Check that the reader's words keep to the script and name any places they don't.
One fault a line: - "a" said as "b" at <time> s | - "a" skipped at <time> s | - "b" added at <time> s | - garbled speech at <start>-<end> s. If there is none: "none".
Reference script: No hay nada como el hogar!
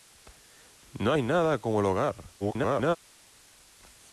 - garbled speech at 2.4-3.0 s